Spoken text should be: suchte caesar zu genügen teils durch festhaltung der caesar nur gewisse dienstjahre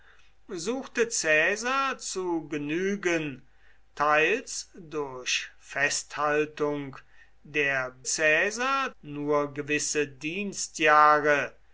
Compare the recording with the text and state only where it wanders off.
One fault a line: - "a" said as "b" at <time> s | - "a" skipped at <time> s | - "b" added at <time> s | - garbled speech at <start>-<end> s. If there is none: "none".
none